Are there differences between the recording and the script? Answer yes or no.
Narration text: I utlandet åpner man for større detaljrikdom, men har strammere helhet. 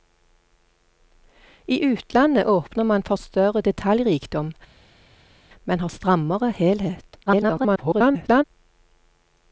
yes